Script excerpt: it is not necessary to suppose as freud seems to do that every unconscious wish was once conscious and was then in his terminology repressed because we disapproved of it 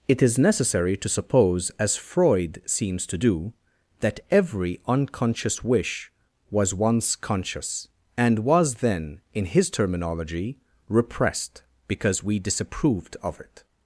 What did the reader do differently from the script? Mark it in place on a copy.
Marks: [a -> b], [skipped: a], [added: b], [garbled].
it is [skipped: not] necessary to suppose as freud seems to do that every unconscious wish was once conscious and was then in his terminology repressed because we disapproved of it